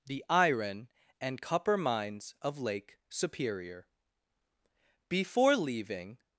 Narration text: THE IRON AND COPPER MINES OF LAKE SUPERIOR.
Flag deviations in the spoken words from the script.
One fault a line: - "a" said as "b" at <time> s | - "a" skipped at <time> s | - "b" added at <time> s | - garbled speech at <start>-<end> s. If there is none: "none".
- "BEFORE leaving" added at 5.1 s